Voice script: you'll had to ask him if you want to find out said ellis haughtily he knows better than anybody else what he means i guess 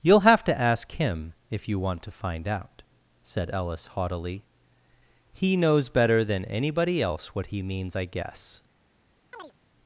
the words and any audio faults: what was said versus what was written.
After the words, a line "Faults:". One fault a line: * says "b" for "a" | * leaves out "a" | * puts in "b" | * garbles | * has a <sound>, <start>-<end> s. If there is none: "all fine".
you'll have to ask him if you want to find out said ellis haughtily he knows better than anybody else what he means i guess
Faults:
* says "have" for "had"
* has a chirp, 9.3-9.5 s